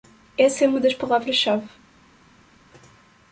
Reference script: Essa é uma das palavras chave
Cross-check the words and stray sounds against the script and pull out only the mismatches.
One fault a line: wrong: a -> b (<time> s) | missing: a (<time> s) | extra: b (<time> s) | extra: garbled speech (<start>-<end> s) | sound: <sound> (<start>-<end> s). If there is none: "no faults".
no faults